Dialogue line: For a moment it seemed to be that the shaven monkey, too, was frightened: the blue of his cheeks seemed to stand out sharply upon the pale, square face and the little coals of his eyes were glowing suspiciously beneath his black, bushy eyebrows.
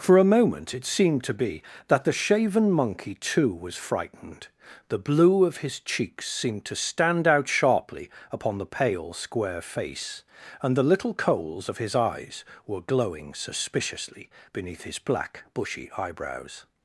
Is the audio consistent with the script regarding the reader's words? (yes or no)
yes